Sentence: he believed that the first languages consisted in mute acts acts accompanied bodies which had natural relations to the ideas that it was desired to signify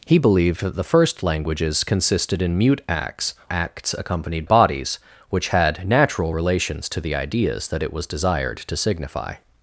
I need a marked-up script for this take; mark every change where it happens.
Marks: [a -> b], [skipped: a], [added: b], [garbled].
he believed that the first languages consisted in mute acts acts accompanied bodies which had natural relations to the ideas that it was desired to signify